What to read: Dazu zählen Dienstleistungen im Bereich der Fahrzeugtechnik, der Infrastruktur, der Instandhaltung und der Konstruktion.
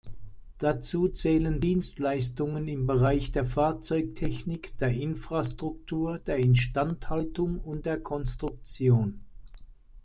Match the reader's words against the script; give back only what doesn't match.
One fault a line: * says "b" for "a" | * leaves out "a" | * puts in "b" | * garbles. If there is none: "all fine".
all fine